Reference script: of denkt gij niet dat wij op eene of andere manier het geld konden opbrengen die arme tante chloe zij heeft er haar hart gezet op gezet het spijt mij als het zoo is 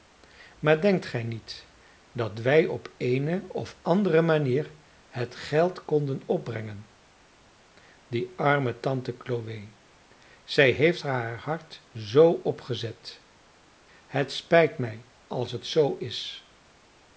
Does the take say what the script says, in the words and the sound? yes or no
no